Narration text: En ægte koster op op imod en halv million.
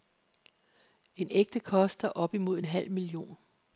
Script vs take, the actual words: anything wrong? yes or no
yes